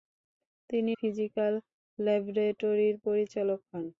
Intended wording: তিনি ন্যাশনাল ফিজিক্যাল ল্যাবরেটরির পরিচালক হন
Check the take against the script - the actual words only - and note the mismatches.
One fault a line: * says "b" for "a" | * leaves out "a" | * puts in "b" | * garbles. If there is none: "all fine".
* leaves out "ন্যাশনাল"